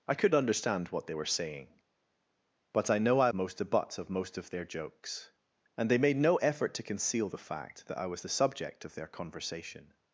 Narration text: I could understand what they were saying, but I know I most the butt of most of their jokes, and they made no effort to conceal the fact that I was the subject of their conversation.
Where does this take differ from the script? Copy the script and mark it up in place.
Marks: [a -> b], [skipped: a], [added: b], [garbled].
I could understand what they were saying, but I know I most the butt of most of their jokes, and they made no effort to conceal the fact that I was the subject of their conversation.